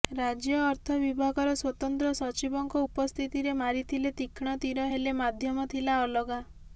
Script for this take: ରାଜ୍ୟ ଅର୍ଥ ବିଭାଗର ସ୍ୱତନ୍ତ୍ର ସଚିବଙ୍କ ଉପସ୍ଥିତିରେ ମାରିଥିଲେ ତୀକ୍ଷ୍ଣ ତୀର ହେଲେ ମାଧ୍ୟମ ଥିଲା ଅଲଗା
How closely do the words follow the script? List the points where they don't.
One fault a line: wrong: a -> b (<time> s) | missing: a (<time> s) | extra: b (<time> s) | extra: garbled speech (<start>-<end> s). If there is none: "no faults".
no faults